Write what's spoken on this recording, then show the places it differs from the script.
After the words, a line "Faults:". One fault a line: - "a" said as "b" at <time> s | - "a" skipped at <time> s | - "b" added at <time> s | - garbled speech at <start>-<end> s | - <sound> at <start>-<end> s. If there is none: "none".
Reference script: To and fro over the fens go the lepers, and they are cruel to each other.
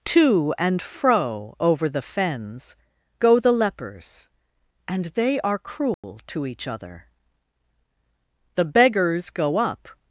To and fro over the fens go the lepers, and they are cruel to each other. The beggars go up
Faults:
- dropout at 5.9-6.0 s
- "The beggars go up" added at 8.6 s